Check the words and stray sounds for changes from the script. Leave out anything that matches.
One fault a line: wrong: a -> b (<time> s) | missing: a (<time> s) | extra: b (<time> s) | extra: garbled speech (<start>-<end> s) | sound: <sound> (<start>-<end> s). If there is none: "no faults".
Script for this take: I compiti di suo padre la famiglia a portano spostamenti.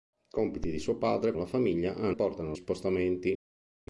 no faults